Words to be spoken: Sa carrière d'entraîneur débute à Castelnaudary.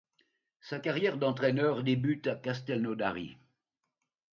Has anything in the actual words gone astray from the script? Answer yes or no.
no